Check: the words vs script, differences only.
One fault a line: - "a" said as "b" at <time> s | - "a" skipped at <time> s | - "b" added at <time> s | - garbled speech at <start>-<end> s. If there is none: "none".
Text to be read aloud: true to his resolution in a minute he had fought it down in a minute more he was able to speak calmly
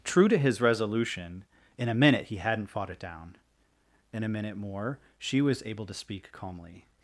- "had" said as "hadn't" at 2.4 s
- "he" said as "she" at 5.2 s